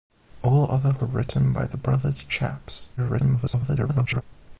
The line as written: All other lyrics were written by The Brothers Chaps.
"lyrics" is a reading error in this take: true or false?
true